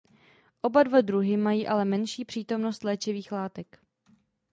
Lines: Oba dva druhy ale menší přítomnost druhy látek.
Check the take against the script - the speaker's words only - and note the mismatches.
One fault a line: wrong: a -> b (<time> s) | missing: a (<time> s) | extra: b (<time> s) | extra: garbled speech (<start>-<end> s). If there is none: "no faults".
extra: mají (1.4 s)
wrong: druhy -> léčivých (2.8 s)